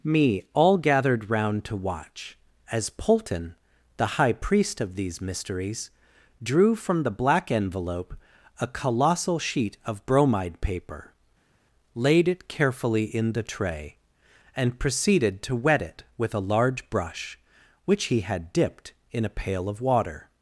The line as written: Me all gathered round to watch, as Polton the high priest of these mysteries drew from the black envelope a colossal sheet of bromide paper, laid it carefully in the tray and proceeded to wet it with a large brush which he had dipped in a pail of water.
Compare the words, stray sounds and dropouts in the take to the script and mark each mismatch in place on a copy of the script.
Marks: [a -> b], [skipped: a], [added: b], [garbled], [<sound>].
Me all gathered round to watch, as Polton the high priest of these mysteries drew from the black envelope a colossal sheet of bromide paper, laid it carefully in the tray and proceeded to wet it with a large brush which he had dipped in a pail of water.